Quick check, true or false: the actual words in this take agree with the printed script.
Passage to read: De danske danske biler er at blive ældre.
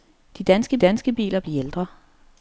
true